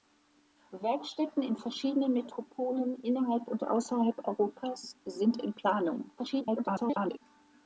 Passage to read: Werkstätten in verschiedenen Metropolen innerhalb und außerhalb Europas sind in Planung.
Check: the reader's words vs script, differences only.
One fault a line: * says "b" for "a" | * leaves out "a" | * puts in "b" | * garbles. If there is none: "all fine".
* garbles